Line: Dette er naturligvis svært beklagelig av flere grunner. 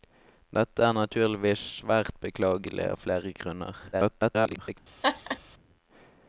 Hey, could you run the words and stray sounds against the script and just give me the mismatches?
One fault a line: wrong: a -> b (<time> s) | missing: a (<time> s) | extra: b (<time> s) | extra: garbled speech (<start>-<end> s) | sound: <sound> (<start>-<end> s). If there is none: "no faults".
extra: garbled speech (3.9-4.8 s)
sound: laugh (5.0-5.4 s)